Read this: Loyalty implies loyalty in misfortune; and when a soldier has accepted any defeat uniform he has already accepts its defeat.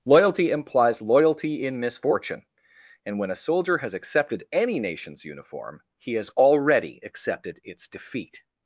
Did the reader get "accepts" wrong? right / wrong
wrong